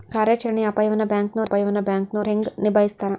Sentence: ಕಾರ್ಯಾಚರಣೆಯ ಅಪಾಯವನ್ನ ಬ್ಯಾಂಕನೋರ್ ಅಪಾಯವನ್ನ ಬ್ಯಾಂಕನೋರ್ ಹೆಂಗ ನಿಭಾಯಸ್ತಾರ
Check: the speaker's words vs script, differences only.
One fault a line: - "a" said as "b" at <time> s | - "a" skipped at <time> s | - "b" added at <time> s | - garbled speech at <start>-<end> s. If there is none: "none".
none